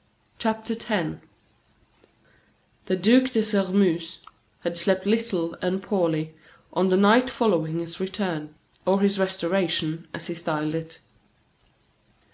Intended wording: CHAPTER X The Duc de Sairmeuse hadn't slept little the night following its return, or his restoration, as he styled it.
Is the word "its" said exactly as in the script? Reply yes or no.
no